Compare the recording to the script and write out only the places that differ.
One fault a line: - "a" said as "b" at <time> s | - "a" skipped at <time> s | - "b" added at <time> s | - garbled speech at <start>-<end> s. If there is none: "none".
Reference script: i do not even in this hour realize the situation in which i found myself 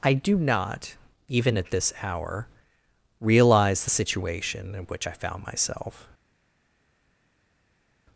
- "in" said as "at" at 1.6 s